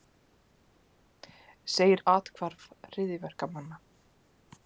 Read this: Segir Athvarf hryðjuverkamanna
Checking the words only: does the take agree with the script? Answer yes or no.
yes